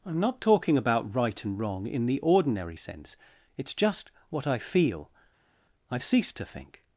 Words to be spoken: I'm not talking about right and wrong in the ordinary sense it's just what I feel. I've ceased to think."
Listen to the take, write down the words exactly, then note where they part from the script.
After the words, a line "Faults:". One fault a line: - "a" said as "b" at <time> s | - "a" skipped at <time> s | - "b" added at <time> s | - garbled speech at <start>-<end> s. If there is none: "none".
I'm not talking about right and wrong in the ordinary sense it's just what I feel. I've ceased to think."
Faults:
none